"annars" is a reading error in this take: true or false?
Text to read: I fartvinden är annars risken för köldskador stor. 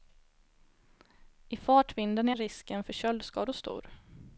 true